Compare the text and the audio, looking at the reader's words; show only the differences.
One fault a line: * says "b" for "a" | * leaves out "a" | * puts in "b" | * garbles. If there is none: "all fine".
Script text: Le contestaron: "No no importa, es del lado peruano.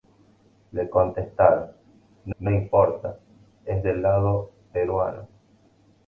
all fine